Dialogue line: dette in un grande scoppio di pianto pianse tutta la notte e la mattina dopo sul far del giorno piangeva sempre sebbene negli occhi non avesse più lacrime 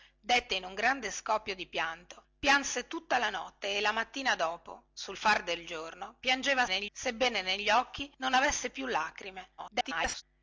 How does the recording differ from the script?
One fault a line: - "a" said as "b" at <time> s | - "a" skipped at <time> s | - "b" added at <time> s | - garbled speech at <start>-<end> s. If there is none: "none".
- "sempre" said as "negli" at 6.7 s
- garbled speech at 9.6-10.2 s